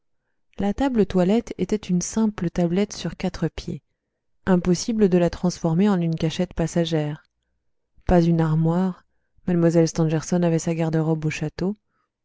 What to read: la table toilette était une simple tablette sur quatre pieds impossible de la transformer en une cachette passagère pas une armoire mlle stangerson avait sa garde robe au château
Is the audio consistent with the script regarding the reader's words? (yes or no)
yes